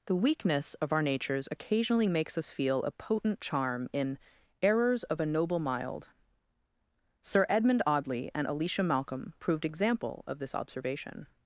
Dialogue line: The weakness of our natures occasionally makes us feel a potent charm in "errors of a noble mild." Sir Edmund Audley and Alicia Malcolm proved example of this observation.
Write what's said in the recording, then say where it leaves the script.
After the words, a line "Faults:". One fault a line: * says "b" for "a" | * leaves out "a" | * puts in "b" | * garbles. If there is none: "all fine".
The weakness of our natures occasionally makes us feel a potent charm in "errors of a noble mild." Sir Edmund Audley and Alicia Malcolm proved example of this observation.
Faults:
all fine